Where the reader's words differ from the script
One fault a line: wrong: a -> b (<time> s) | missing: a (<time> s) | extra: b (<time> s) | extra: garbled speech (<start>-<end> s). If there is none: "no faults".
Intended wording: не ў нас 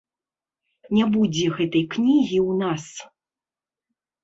extra: будзе гэтай кнігі (1.2 s)